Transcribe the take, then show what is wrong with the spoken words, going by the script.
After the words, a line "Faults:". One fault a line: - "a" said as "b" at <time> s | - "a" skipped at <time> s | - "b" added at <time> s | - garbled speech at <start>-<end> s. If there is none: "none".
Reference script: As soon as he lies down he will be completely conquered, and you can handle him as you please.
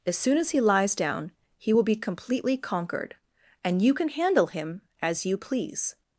As soon as he lies down he will be completely conquered, and you can handle him as you please.
Faults:
none